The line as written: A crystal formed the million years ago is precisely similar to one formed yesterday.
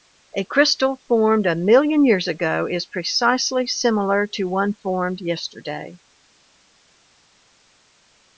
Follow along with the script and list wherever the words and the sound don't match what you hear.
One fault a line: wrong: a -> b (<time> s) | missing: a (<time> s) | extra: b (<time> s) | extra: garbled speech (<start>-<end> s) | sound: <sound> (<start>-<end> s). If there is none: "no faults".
wrong: the -> a (1.4 s)